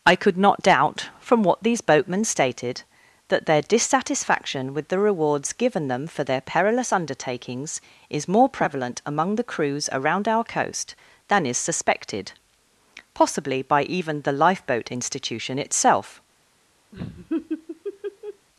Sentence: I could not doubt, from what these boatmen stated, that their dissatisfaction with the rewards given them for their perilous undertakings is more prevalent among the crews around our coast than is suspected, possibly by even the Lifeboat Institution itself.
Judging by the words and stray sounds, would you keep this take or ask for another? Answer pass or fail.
fail